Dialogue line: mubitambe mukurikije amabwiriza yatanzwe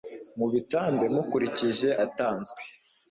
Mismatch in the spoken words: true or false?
true